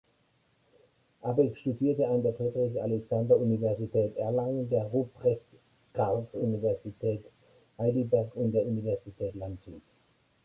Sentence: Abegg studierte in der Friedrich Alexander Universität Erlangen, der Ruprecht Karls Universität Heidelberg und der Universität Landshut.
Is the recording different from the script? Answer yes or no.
yes